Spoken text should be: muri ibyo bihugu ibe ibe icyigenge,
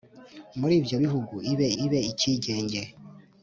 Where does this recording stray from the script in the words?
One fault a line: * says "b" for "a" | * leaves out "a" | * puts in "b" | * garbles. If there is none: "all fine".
all fine